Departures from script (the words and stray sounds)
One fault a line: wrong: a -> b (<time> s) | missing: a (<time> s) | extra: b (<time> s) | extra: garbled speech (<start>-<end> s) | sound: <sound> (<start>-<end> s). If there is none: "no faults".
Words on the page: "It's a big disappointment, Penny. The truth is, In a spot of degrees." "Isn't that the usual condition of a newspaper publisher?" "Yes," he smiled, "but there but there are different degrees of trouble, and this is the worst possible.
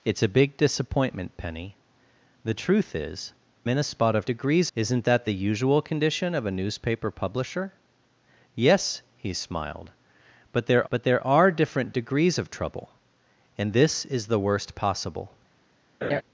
sound: laugh (16.0-16.2 s)